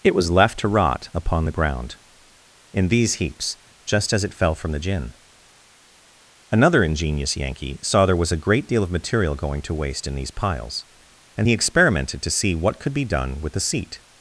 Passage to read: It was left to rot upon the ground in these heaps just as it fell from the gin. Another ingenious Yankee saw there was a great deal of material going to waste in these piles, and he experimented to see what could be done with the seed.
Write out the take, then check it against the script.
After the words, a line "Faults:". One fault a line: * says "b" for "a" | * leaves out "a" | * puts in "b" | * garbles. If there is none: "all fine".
It was left to rot upon the ground in these heaps just as it fell from the gin. Another ingenious Yankee saw there was a great deal of material going to waste in these piles, and he experimented to see what could be done with the seat.
Faults:
* says "seat" for "seed"